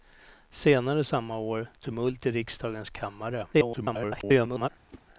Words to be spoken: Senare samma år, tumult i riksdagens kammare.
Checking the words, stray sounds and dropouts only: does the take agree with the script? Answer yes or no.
no